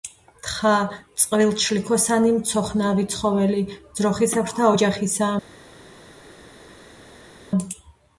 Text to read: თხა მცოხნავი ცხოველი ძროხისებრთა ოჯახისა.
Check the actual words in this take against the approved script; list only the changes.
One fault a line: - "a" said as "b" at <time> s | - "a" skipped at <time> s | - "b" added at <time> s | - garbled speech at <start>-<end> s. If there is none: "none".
- "წყვილჩლიქოსანი" added at 1.2 s